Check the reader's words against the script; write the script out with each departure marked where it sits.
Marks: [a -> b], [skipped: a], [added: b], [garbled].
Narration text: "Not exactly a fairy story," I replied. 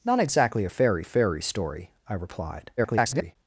"Not exactly a fairy [added: fairy] story," I replied. [garbled]